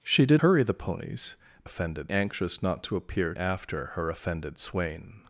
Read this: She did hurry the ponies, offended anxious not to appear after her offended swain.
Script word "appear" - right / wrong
right